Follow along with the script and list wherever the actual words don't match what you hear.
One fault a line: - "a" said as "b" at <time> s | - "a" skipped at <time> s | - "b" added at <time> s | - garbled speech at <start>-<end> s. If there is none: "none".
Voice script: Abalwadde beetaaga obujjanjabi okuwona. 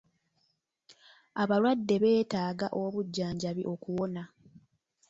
none